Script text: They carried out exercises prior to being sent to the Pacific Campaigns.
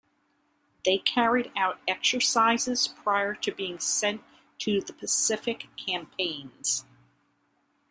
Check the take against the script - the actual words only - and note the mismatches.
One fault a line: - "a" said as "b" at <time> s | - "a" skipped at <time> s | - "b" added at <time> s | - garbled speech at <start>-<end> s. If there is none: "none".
none